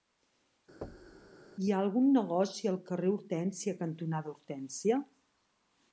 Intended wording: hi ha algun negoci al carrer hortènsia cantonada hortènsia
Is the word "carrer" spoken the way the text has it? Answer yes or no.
yes